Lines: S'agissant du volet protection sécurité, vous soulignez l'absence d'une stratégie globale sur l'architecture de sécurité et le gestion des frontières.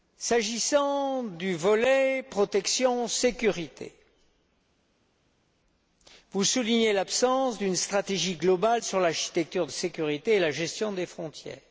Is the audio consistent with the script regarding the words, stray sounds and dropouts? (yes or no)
no